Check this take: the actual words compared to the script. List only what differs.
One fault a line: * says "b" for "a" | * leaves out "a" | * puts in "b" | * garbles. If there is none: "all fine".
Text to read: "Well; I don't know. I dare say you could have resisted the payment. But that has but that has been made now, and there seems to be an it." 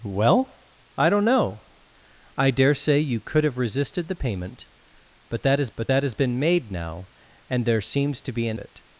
all fine